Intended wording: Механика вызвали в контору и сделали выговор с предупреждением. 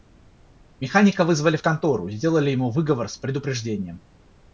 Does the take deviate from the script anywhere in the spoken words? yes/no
yes